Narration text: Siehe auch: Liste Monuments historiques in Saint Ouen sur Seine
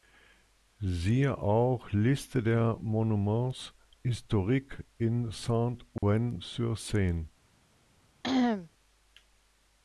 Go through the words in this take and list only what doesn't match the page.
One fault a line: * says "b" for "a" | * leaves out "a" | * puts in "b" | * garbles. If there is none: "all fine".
* puts in "der"